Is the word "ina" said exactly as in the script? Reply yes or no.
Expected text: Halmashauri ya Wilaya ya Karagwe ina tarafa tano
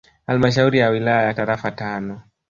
no